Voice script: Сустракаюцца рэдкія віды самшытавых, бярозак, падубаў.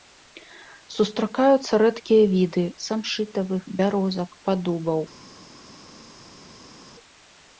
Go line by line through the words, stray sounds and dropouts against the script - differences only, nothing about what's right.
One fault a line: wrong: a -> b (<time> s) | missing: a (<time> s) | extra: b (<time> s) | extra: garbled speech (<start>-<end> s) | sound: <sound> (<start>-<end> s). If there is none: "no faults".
no faults